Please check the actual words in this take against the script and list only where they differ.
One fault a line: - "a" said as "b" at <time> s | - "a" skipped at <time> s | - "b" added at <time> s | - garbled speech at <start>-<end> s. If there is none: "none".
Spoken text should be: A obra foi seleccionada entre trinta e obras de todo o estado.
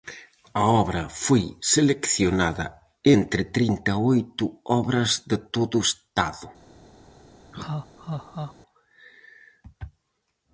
- "oito" added at 4.1 s